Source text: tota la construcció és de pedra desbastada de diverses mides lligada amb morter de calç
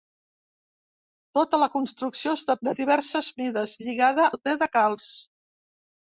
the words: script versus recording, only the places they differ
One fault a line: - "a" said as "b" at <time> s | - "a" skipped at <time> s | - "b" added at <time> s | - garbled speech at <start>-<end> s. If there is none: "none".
- "pedra desbastada" skipped at 2.6 s
- "amb" skipped at 4.3 s